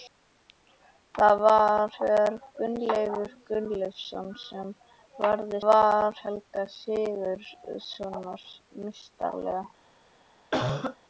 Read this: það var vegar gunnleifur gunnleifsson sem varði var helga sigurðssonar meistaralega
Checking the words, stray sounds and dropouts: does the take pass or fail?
fail